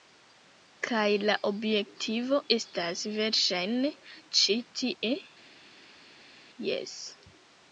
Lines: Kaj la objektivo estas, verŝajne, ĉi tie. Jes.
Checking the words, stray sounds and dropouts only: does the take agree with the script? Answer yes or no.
yes